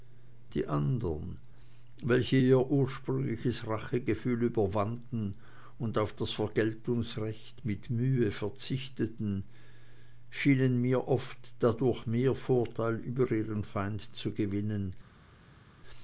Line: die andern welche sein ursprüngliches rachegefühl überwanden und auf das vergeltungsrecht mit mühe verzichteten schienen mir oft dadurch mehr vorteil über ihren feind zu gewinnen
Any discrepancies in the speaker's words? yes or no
yes